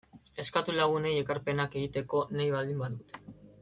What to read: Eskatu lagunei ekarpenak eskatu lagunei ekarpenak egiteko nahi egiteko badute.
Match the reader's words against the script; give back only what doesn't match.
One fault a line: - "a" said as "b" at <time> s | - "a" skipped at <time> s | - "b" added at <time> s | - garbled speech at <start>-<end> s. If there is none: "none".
- "eskatu lagunei ekarpenak" skipped at 1.8 s
- "egiteko" said as "baldin" at 2.6 s